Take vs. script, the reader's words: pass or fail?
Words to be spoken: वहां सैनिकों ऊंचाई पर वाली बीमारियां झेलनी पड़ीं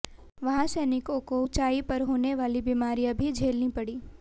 fail